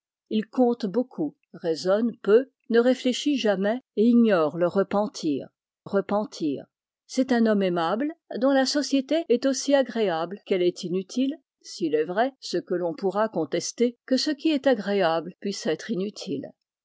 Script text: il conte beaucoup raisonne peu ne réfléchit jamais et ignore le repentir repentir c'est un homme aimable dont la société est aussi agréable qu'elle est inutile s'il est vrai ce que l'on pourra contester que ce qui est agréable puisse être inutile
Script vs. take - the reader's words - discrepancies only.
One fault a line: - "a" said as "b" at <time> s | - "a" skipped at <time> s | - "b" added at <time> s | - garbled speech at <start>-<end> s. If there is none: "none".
none